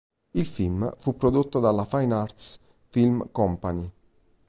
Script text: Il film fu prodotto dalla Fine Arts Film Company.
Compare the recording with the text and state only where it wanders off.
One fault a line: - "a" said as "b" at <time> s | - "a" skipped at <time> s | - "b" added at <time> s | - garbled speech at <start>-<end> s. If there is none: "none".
none